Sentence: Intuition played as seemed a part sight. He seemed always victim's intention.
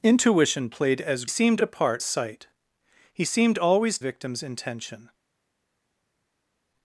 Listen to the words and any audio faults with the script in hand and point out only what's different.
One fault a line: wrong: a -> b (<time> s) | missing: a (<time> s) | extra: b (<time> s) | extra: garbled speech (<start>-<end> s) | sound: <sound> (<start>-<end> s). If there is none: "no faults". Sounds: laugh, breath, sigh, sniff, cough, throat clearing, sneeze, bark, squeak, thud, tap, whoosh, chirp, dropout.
no faults